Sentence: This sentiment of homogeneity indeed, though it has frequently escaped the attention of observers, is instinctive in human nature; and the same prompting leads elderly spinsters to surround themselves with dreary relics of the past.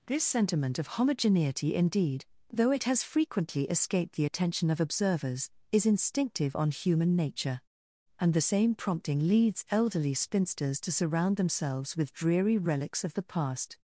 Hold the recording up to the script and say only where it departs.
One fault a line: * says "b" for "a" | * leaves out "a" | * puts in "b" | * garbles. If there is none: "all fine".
* says "on" for "in"